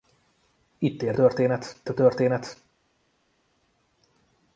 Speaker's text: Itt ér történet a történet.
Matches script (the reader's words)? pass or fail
pass